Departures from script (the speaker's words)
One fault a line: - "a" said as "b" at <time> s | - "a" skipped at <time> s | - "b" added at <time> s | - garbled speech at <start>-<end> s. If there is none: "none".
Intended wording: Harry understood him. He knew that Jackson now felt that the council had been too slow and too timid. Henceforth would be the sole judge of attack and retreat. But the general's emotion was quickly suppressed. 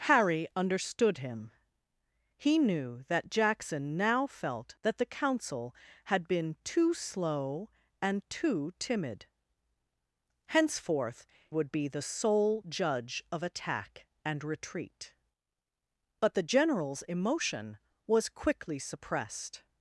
none